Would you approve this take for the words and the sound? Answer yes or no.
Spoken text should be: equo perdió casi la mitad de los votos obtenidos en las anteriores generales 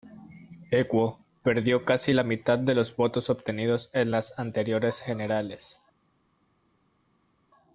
yes